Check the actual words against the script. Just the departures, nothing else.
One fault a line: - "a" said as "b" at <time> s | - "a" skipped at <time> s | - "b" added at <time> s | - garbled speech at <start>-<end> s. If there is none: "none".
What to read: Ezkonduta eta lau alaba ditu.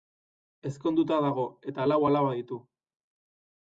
- "dago" added at 1.3 s